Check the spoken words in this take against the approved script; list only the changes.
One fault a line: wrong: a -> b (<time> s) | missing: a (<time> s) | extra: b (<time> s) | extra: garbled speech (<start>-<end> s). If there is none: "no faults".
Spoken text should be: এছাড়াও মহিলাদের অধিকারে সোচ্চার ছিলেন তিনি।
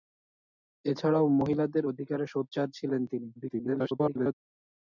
extra: garbled speech (3.4-4.3 s)